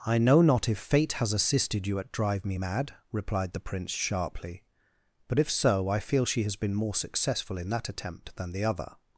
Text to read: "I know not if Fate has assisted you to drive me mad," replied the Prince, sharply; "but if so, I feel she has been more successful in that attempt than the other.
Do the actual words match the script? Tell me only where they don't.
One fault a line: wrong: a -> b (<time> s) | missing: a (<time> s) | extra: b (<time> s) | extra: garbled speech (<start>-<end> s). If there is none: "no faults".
wrong: to -> at (2.0 s)